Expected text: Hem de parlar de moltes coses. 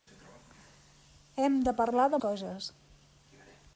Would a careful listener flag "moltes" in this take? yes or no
yes